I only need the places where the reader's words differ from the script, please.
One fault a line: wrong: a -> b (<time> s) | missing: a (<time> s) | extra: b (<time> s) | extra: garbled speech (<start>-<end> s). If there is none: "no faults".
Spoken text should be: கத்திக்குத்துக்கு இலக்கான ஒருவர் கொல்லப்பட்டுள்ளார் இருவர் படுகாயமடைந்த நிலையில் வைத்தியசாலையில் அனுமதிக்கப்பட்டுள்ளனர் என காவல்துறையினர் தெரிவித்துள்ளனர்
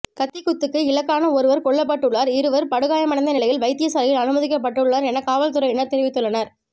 no faults